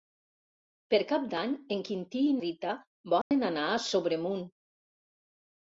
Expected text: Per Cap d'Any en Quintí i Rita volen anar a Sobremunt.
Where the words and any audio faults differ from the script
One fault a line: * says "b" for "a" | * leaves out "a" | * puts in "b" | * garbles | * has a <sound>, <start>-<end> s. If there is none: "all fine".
* has a dropout, 3.2-3.3 s